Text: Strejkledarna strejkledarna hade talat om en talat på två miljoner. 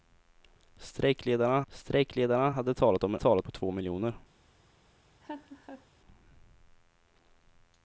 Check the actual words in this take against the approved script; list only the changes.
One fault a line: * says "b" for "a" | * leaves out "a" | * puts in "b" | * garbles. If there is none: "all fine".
all fine